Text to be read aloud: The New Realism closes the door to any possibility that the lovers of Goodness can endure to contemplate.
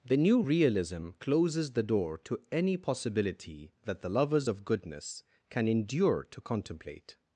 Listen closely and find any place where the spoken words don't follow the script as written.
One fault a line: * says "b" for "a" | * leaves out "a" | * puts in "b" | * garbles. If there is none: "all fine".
all fine